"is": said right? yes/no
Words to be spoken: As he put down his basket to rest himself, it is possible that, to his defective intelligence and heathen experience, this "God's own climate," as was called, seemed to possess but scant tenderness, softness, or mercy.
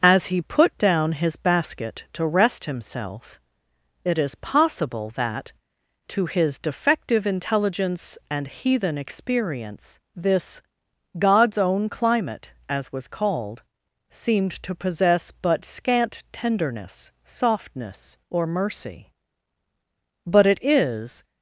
yes